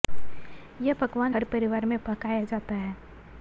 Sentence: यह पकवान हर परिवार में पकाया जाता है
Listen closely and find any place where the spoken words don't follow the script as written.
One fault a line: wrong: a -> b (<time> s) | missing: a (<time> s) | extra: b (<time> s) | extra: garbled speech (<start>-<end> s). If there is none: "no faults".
no faults